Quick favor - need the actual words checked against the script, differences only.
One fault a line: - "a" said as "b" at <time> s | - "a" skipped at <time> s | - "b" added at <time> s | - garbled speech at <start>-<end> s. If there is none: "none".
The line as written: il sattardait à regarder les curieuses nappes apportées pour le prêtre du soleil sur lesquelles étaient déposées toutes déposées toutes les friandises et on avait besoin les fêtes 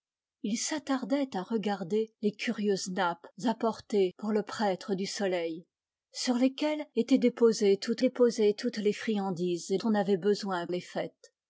none